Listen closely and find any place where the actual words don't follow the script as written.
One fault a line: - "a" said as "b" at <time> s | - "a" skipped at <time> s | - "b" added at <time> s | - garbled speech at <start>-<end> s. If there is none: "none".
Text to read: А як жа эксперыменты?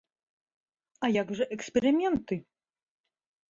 none